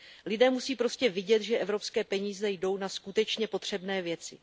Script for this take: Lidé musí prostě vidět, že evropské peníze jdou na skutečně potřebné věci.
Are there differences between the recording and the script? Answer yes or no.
no